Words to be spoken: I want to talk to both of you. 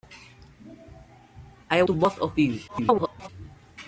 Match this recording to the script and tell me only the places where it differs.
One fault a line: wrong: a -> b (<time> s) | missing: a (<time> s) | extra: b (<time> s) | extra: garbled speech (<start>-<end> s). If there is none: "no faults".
missing: want to talk (1.8 s)
extra: garbled speech (2.7-3.3 s)